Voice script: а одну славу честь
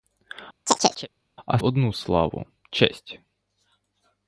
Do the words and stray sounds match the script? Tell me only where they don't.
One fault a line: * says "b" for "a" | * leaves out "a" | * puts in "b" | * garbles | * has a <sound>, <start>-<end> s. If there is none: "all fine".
* has a chirp, 0.7-1.1 s